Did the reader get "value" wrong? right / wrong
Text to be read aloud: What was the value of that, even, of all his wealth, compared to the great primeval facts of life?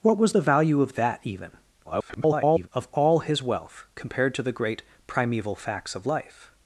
right